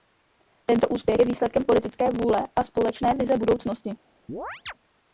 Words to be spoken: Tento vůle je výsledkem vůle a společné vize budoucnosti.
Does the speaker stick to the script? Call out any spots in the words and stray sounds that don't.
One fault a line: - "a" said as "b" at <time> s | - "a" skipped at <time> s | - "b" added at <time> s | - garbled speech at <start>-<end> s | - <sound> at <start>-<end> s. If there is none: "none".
- "vůle" said as "úspěch" at 0.9 s
- "politické" added at 1.6 s
- chirp at 4.3-4.7 s